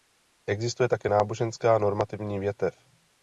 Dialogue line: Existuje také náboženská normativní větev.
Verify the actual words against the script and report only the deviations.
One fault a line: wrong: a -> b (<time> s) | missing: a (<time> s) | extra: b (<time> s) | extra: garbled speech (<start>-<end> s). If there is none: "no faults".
no faults